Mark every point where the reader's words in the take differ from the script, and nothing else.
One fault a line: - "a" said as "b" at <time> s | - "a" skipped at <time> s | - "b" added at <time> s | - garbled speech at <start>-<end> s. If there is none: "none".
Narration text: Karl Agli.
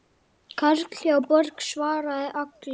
- "hjá Borg svaraði" added at 1.0 s